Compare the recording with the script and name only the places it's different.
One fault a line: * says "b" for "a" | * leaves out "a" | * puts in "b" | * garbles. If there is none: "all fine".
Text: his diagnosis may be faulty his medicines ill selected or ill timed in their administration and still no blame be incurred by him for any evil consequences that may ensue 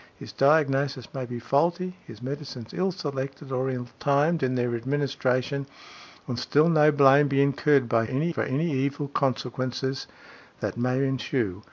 * says "any" for "him"